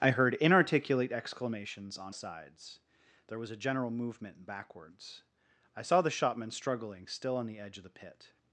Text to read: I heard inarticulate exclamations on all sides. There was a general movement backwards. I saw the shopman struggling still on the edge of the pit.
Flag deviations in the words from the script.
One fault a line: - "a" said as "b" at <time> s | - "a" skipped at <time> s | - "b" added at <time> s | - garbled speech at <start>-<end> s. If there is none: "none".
- "all" skipped at 2.1 s